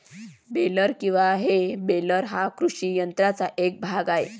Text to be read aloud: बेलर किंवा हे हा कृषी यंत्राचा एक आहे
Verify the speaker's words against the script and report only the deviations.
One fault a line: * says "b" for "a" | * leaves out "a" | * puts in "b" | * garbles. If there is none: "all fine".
* puts in "बेलर"
* puts in "भाग"